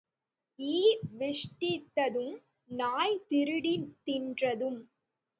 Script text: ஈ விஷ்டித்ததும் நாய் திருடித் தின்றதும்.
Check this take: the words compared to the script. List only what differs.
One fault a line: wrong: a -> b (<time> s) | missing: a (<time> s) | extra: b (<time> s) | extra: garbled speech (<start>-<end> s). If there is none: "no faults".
no faults